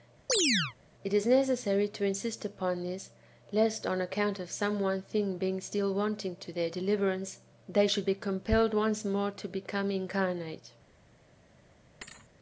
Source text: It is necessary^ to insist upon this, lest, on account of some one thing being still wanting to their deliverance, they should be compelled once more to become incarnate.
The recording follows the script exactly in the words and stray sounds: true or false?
false